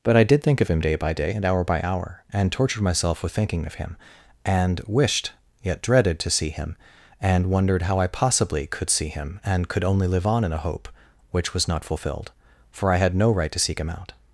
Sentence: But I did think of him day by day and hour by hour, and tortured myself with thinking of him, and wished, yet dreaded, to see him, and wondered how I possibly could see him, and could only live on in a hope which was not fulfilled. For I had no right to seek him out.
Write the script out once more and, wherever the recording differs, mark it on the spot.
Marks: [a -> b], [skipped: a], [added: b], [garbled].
But I did think of him day by day and hour by hour, and tortured myself with thinking of him, and wished, yet dreaded, to see him, and wondered how I possibly could see him, and could only live on in a hope which was not fulfilled. For I had no right to seek him out.